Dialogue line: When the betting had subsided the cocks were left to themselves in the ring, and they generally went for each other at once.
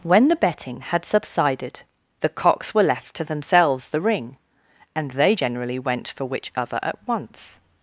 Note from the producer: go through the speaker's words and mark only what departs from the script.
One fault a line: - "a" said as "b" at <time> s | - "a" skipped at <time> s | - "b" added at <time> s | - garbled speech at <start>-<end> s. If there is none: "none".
- "in" skipped at 3.9 s
- "each" said as "which" at 6.2 s